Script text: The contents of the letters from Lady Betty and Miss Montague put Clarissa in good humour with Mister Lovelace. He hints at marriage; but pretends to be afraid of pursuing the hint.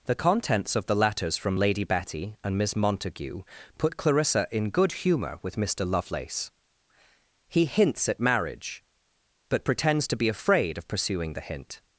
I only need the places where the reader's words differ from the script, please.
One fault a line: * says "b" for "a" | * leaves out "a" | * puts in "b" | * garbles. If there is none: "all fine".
all fine